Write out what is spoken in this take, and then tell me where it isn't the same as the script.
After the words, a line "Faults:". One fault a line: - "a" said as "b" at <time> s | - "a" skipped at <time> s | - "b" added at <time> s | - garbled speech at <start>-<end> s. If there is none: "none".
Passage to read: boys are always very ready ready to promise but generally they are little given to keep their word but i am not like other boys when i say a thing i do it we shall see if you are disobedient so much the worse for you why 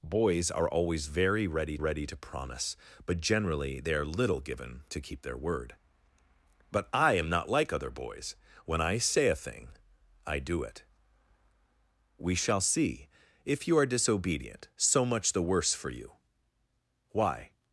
boys are always very ready ready to promise but generally they are little given to keep their word but i am not like other boys when i say a thing i do it we shall see if you are disobedient so much the worse for you why
Faults:
none